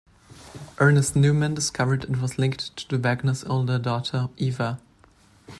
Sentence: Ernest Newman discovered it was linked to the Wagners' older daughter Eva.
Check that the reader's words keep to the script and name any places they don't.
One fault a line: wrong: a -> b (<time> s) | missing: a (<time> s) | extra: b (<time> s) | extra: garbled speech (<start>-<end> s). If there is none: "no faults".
no faults